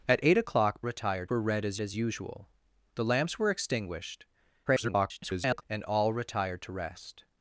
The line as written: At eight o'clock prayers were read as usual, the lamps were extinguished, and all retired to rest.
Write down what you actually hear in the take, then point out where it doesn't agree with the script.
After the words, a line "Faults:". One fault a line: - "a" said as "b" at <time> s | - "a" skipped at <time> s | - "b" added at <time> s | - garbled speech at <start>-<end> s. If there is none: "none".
At eight o'clock retired were read as as usual, the lamps were extinguished, [garbled] and all retired to rest.
Faults:
- "prayers" said as "retired" at 0.8 s
- "as" added at 1.8 s
- garbled speech at 4.7-5.6 s